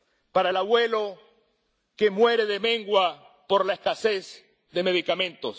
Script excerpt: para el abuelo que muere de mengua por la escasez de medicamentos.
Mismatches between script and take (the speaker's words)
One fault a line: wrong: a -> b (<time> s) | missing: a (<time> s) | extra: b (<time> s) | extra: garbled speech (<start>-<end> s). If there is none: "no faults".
no faults